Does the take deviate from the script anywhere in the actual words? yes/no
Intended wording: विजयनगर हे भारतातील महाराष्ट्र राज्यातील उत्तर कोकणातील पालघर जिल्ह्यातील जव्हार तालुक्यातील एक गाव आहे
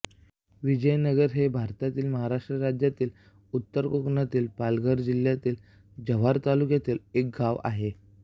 no